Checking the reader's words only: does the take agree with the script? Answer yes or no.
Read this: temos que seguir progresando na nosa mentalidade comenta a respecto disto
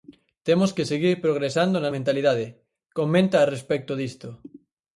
no